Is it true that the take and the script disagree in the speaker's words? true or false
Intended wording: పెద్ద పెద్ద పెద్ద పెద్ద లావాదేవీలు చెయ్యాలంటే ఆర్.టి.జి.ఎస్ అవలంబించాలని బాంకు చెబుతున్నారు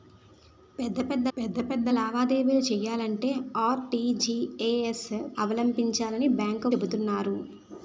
false